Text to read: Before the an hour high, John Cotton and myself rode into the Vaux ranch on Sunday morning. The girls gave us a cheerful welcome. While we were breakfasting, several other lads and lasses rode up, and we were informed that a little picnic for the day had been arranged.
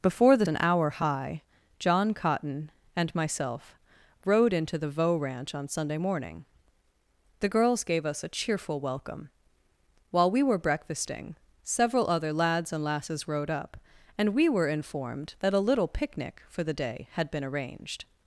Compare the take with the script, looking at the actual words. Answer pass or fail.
pass